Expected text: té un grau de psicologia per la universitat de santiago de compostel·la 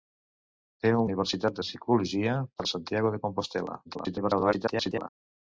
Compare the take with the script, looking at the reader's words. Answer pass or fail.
fail